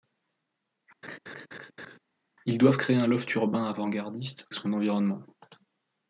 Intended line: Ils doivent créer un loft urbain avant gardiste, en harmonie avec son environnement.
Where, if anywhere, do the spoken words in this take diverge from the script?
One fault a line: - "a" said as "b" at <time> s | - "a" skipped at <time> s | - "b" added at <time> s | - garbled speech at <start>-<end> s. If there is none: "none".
- "en harmonie avec" skipped at 4.5 s